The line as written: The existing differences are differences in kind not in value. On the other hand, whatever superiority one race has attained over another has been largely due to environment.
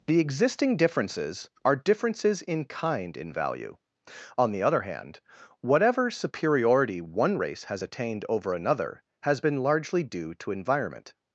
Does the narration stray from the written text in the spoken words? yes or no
yes